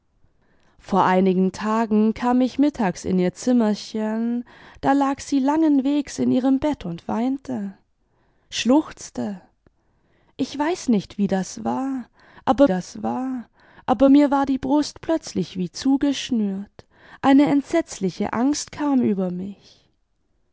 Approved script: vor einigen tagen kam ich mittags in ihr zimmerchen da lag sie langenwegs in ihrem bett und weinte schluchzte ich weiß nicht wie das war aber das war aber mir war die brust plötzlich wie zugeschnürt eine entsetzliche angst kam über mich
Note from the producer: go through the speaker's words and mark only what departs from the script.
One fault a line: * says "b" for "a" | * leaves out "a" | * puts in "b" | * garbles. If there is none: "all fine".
all fine